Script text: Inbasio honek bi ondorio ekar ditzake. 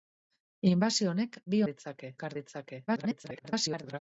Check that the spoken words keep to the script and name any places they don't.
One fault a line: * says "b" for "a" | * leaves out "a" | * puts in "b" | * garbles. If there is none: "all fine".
* says "ditzake" for "ondorio"
* garbles